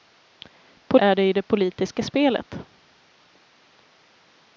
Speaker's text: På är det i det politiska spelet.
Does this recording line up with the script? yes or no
yes